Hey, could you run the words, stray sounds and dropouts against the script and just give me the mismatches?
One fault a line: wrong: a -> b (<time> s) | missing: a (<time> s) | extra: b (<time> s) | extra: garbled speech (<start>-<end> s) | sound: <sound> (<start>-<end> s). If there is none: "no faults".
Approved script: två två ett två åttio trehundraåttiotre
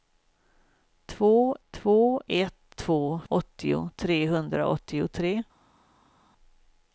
no faults